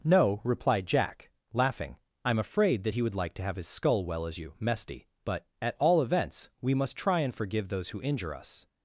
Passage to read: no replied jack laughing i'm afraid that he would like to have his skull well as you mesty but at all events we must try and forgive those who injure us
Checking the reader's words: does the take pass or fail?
pass